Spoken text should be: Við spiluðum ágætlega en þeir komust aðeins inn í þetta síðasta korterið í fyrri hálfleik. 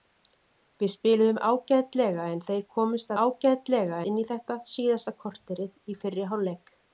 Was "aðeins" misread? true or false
true